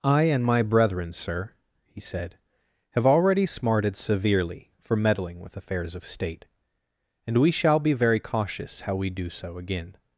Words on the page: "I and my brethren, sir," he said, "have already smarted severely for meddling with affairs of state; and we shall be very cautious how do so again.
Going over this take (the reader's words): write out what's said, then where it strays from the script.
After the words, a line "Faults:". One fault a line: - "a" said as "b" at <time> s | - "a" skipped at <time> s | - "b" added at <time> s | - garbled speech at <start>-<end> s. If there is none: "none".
"I and my brethren, sir," he said, "have already smarted severely for meddling with affairs of state; and we shall be very cautious how we do so again.
Faults:
- "we" added at 8.9 s